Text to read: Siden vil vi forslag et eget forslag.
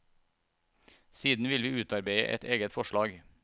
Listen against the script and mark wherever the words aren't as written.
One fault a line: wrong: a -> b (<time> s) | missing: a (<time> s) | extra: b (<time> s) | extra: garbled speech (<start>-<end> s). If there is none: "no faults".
wrong: forslag -> utarbeide (1.8 s)